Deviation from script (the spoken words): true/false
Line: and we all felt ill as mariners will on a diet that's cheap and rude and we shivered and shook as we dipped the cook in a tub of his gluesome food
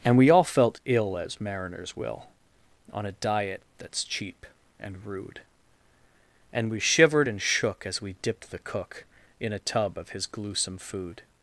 false